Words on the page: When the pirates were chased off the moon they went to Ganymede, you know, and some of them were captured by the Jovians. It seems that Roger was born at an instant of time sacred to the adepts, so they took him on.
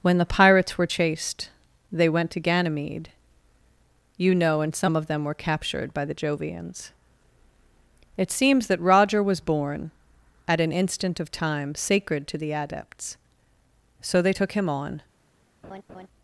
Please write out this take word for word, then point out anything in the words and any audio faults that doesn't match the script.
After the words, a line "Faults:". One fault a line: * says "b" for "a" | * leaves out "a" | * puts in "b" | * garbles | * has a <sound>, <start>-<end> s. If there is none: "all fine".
When the pirates were chased they went to Ganymede, you know, and some of them were captured by the Jovians. It seems that Roger was born at an instant of time sacred to the adepts, so they took him on.
Faults:
* leaves out "off the moon"
* has a laugh, 15.6-16.1 s